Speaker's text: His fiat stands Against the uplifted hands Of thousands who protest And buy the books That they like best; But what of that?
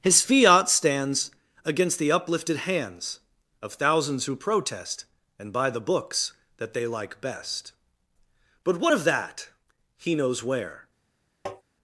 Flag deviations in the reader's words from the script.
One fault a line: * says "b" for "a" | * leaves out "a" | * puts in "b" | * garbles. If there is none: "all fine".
* puts in "He knows where"